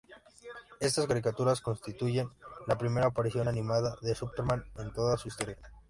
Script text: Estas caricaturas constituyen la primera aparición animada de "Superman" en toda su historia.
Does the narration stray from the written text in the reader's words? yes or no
no